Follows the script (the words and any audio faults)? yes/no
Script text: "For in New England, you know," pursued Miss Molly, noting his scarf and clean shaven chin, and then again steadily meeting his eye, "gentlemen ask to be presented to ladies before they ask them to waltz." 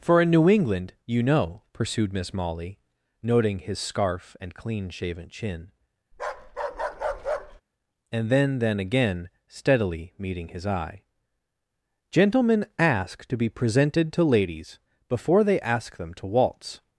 no